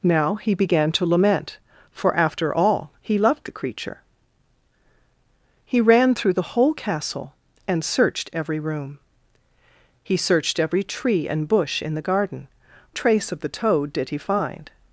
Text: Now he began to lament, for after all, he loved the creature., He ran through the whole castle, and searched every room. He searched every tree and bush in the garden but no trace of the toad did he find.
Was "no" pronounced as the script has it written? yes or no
no